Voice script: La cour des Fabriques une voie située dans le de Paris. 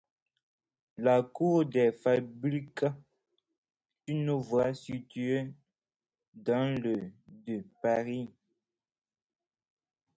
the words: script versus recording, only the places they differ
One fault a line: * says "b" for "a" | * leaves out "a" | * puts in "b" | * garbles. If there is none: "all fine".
all fine